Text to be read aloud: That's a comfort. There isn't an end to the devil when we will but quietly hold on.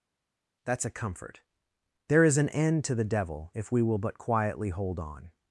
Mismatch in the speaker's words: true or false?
true